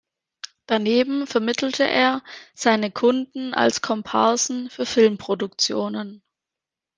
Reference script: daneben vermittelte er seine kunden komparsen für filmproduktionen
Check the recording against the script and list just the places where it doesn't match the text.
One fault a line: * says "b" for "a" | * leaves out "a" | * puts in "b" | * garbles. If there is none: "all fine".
* puts in "als"